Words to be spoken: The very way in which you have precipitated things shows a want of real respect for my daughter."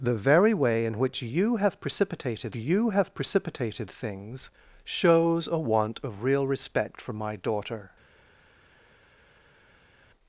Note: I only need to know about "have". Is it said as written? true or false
true